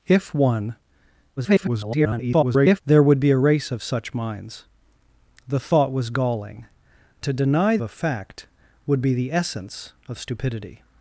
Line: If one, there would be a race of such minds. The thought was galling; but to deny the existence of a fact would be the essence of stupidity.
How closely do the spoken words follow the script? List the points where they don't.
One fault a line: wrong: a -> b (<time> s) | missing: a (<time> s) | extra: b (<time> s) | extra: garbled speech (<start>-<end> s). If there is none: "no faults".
extra: garbled speech (1.4-2.8 s)
missing: but (6.6 s)
missing: the existence of (7.8 s)